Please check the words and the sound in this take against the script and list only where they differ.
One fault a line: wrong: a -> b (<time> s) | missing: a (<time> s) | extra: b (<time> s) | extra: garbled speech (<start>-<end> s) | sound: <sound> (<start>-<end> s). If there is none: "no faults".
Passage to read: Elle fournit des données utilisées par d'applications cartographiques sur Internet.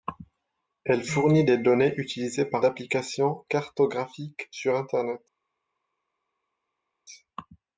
no faults